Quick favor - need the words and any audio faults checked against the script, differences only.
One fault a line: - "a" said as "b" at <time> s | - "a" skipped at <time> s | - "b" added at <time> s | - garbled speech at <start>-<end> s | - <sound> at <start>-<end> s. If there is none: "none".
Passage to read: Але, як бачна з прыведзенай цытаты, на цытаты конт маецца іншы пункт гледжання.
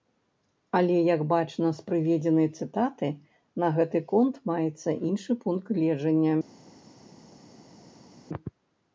- "цытаты" said as "гэты" at 3.8 s